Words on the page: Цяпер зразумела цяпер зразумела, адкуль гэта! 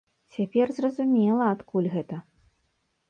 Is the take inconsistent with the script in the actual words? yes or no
yes